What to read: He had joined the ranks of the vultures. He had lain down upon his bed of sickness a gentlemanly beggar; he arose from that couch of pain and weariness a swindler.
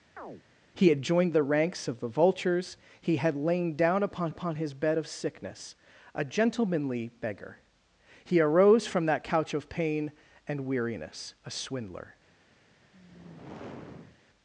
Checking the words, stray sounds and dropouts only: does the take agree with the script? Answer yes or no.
no